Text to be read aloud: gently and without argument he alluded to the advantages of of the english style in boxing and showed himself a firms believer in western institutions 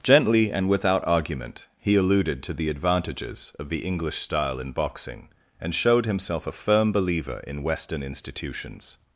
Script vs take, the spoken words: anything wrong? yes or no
yes